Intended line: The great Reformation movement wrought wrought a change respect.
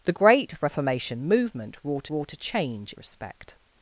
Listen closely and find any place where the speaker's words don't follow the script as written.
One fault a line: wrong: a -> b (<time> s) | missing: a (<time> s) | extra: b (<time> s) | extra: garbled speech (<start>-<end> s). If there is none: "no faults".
no faults